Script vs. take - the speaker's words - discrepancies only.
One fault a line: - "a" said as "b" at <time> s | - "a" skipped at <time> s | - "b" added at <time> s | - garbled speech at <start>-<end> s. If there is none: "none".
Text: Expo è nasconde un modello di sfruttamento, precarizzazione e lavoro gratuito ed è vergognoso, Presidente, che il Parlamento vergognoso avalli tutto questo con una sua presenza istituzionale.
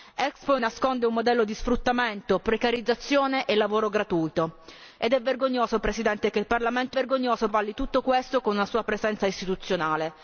none